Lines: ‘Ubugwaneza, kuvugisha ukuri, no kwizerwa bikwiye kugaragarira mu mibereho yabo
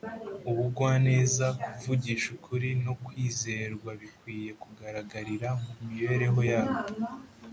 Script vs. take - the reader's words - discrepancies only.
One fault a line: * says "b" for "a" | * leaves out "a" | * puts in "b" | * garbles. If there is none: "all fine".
all fine